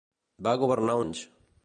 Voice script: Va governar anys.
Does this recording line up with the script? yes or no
yes